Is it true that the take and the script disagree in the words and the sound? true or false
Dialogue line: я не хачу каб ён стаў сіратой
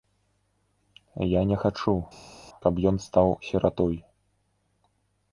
false